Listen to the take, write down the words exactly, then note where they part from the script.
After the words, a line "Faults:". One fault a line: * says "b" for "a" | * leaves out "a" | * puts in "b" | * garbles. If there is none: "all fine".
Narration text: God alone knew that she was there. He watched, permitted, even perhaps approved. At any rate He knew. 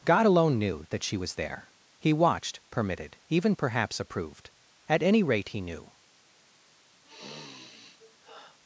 God alone knew that she was there. He watched, permitted, even perhaps approved. At any rate He knew.
Faults:
all fine